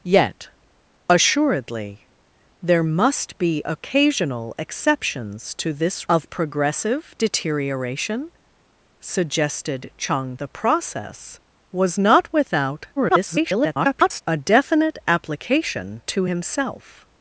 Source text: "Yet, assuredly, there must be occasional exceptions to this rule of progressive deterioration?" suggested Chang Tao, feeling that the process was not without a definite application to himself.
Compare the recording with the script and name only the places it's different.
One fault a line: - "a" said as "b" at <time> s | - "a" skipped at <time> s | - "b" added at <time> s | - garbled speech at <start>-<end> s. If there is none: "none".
- "rule" skipped at 6.1 s
- "Tao feeling that" skipped at 10.4 s
- garbled speech at 13.0-14.2 s